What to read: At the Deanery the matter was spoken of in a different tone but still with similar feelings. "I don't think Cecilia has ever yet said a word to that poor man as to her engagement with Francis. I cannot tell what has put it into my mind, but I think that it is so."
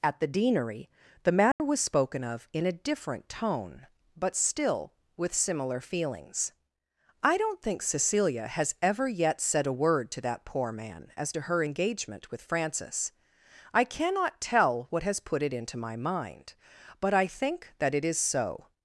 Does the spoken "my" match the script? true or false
true